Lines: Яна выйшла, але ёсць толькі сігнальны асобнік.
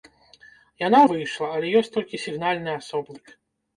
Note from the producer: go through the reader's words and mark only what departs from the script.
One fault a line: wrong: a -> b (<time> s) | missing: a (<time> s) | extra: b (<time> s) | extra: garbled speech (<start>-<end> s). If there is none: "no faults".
no faults